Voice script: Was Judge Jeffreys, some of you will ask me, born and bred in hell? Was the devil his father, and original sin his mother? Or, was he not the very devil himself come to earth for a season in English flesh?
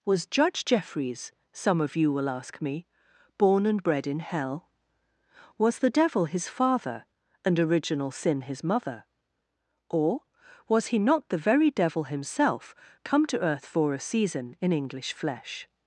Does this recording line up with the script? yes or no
yes